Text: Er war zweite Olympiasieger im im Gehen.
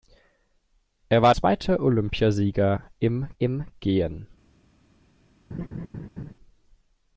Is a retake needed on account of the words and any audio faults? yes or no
yes